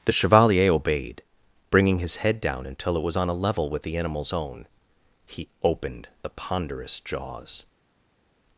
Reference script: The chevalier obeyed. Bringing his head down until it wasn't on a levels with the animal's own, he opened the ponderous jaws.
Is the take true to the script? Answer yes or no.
no